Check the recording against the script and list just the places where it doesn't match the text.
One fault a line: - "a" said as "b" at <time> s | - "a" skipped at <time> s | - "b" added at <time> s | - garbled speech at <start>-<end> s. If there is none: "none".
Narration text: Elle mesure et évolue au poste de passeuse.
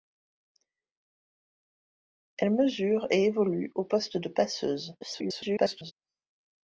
- garbled speech at 5.0-5.9 s